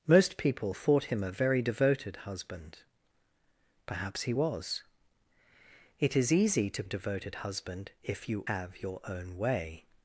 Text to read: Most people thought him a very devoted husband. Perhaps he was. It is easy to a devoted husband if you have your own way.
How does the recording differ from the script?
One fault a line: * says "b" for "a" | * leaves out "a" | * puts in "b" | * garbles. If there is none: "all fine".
all fine